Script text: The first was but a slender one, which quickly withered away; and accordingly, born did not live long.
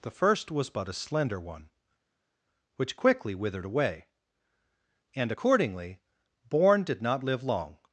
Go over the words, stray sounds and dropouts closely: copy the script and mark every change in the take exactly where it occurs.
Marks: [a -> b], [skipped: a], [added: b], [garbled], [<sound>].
The first was but a slender one, which quickly withered away; and accordingly, born did not live long.